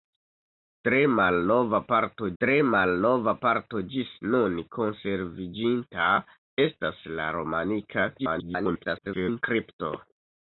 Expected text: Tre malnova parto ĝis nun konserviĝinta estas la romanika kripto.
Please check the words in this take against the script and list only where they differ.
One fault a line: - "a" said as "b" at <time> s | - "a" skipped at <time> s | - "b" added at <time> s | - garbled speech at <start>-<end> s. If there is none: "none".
- "tre malnova parto" added at 2.4 s
- garbled speech at 8.2-9.4 s